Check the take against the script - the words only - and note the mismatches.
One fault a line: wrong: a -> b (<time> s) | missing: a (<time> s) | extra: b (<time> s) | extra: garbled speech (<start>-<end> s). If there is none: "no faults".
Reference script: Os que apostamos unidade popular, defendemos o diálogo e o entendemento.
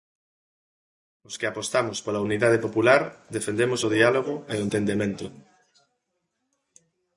extra: pola (2.0 s)